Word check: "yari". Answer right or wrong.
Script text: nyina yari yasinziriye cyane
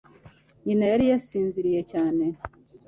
right